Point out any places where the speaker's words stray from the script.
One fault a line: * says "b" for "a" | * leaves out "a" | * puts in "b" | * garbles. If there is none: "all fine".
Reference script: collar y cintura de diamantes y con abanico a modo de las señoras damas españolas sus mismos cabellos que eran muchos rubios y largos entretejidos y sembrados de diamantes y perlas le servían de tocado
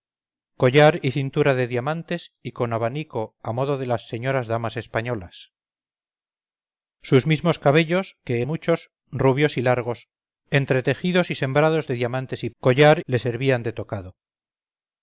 * leaves out "eran"
* says "collar" for "perlas"